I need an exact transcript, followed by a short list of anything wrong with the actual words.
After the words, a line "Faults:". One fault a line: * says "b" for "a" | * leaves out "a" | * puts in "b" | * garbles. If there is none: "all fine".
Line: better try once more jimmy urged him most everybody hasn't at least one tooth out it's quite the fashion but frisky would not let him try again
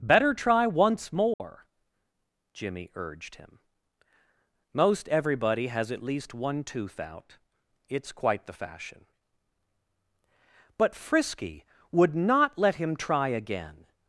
better try once more jimmy urged him most everybody has at least one tooth out it's quite the fashion but frisky would not let him try again
Faults:
* says "has" for "hasn't"